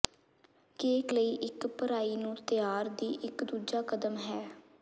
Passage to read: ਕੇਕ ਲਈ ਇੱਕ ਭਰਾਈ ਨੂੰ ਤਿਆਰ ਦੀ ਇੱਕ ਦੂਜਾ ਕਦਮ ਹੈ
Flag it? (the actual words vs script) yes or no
no